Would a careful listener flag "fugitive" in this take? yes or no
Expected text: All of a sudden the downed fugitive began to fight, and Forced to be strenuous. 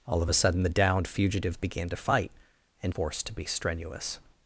no